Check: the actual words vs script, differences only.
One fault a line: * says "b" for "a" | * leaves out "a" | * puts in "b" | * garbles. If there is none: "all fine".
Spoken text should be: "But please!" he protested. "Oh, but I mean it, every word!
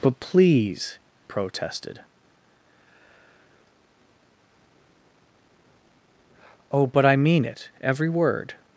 * leaves out "he"